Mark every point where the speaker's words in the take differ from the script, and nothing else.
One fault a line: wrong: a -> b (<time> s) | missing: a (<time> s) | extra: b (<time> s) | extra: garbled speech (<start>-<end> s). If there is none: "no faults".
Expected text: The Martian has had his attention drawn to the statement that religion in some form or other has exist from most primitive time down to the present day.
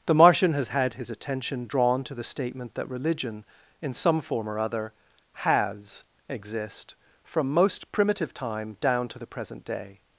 no faults